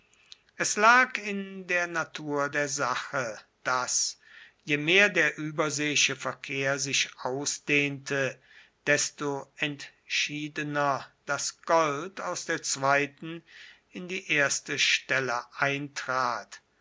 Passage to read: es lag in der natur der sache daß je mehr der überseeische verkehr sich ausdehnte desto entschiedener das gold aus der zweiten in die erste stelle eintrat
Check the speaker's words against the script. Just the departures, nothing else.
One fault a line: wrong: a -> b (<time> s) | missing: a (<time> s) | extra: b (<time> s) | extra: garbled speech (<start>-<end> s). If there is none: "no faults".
no faults